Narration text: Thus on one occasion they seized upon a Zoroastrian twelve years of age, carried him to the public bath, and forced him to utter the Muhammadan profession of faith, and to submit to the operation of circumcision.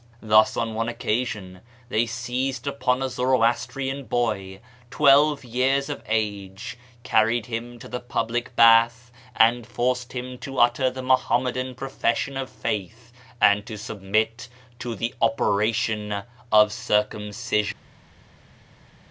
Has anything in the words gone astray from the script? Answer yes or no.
yes